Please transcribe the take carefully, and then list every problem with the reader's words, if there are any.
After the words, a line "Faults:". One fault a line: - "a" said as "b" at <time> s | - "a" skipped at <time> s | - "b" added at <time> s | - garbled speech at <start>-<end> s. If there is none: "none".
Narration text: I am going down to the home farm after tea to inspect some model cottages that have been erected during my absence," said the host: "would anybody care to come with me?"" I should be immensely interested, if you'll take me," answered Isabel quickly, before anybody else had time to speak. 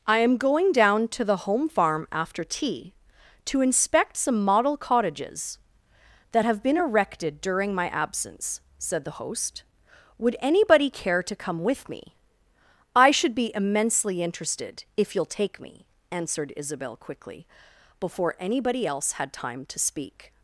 I am going down to the home farm after tea to inspect some model cottages that have been erected during my absence," said the host: "would anybody care to come with me?"" I should be immensely interested, if you'll take me," answered Isabel quickly, before anybody else had time to speak.
Faults:
none